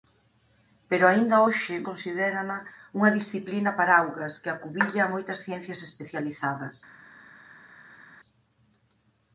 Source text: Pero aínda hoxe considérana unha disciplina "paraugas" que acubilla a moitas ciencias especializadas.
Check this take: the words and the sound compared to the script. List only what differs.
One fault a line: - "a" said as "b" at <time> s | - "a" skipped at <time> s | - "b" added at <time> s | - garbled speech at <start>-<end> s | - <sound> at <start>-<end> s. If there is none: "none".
none